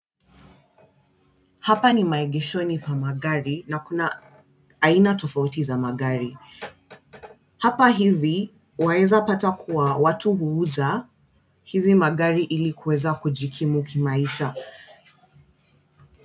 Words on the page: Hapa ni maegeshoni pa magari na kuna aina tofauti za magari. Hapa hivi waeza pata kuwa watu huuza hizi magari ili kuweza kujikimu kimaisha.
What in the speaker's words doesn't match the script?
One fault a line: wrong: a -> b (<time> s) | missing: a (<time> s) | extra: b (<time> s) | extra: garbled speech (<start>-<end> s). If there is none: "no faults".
no faults